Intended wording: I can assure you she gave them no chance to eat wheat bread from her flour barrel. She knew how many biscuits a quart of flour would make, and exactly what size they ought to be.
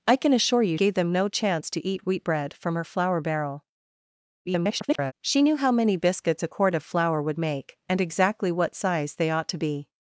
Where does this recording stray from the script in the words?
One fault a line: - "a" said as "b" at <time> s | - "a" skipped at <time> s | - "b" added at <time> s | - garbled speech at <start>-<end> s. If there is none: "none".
- "she" skipped at 0.8 s
- garbled speech at 4.4-5.1 s